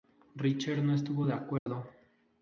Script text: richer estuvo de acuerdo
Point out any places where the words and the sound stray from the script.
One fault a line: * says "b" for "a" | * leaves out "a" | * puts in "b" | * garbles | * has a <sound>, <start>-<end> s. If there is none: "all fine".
* puts in "no"
* has a dropout, 1.6-1.7 s